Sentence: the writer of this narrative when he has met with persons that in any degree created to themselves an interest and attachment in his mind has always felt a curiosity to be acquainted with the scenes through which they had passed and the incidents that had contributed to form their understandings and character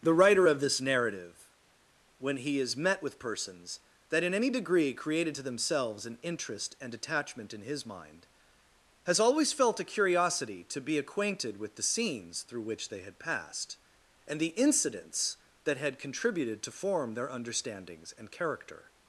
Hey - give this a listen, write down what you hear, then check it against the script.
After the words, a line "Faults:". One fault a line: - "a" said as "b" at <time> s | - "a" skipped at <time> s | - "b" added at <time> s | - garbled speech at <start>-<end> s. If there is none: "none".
the writer of this narrative when he is met with persons that in any degree created to themselves an interest and attachment in his mind has always felt a curiosity to be acquainted with the scenes through which they had passed and the incidents that had contributed to form their understandings and character
Faults:
- "has" said as "is" at 2.6 s